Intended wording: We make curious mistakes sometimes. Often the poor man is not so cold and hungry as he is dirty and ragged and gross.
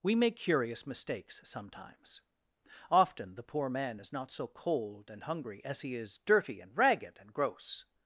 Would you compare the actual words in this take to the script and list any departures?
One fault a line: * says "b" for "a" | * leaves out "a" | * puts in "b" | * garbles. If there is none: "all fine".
all fine